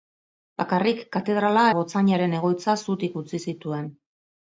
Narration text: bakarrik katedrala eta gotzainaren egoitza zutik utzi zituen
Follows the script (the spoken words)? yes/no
no